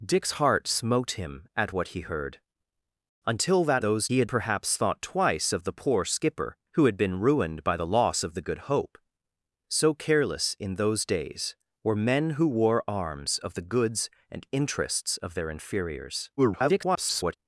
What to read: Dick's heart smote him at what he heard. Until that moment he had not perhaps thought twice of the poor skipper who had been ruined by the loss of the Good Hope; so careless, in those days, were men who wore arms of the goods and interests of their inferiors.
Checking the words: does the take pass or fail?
fail